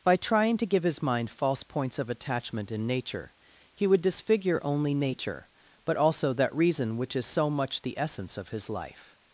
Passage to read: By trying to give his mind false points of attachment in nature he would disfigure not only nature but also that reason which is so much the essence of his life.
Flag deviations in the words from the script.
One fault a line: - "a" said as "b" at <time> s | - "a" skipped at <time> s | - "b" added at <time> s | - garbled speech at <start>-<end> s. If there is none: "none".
- "not" skipped at 4.6 s